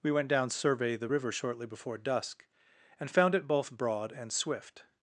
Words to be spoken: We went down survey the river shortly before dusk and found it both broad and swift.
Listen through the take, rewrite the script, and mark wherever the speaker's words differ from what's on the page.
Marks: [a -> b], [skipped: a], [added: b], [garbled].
We went down survey the river shortly before dusk and found it both broad and swift.